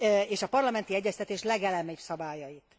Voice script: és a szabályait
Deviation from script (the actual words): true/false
true